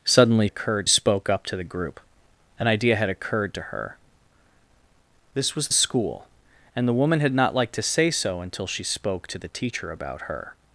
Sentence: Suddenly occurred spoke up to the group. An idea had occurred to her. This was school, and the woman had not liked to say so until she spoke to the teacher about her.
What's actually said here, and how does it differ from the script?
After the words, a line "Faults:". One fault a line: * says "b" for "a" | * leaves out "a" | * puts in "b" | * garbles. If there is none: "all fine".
Suddenly occurred spoke up to the group. An idea had occurred to her. This was school, and the woman had not liked to say so until she spoke to the teacher about her.
Faults:
all fine